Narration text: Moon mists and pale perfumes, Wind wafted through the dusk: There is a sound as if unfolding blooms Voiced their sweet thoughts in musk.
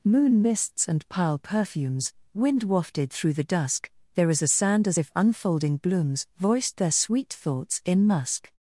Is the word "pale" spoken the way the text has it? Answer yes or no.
no